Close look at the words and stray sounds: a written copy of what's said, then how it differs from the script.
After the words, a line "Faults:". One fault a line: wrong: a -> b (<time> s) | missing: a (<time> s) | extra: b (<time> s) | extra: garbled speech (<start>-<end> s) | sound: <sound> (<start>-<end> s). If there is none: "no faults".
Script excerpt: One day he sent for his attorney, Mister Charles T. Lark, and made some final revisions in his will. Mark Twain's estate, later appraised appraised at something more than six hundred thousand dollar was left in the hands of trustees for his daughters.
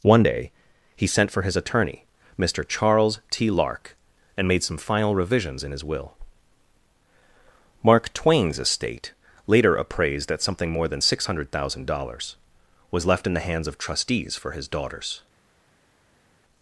One day he sent for his attorney, Mister Charles T. Lark, and made some final revisions in his will. Mark Twain's estate, later appraised at something more than six hundred thousand dollars was left in the hands of trustees for his daughters.
Faults:
missing: appraised (10.3 s)
wrong: dollar -> dollars (11.9 s)